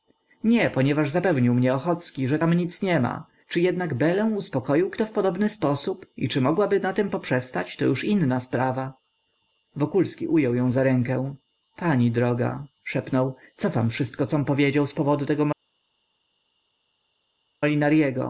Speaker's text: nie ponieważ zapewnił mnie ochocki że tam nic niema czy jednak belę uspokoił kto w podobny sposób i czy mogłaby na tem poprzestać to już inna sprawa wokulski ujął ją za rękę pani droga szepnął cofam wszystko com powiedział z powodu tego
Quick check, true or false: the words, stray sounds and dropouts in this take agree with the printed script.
true